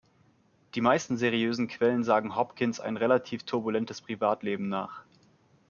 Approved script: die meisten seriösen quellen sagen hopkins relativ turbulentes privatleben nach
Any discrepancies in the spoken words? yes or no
yes